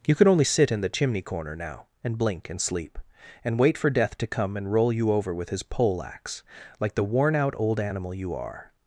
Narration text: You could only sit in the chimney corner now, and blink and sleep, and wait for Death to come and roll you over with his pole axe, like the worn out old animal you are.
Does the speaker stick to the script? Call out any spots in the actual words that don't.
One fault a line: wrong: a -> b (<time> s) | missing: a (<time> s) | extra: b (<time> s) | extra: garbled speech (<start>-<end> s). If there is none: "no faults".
no faults